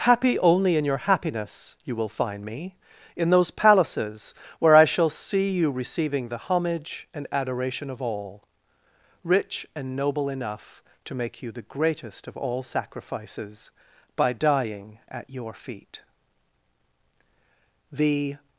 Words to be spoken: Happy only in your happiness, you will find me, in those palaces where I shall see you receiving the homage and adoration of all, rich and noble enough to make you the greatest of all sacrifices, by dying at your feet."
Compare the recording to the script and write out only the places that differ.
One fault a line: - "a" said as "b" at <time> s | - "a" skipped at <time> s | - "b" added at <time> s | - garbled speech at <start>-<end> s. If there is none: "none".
- "The" added at 17.9 s